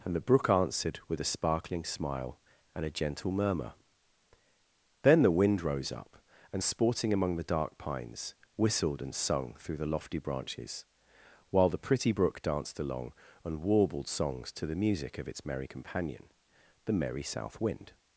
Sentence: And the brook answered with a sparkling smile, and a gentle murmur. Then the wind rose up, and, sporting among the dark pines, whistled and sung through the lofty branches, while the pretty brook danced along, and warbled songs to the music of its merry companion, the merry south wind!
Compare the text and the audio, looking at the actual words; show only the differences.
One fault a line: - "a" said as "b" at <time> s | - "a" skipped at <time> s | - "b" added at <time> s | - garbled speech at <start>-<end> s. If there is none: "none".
none